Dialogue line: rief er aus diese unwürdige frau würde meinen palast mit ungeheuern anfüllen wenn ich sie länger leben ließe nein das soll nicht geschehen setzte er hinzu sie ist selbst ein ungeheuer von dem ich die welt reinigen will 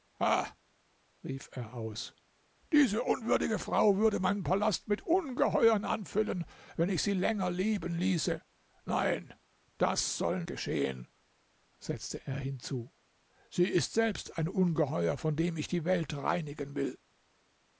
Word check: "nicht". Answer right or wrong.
wrong